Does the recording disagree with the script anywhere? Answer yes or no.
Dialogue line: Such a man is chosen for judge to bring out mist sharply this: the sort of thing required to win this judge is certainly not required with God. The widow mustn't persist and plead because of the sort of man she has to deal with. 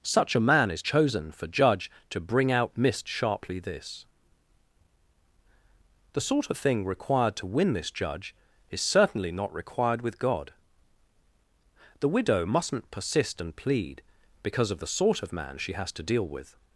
no